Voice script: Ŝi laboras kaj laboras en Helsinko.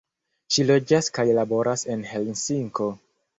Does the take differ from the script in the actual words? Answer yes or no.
yes